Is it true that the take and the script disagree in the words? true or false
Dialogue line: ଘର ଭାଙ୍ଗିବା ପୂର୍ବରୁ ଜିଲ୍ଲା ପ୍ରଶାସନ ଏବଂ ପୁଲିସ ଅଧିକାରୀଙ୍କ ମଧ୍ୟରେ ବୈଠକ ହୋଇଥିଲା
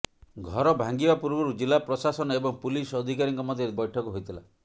false